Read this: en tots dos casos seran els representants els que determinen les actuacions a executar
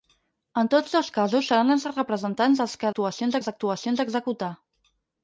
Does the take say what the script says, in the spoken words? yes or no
no